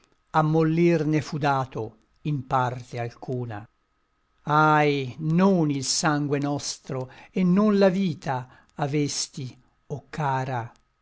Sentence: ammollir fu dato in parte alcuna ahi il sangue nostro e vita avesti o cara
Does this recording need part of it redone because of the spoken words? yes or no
yes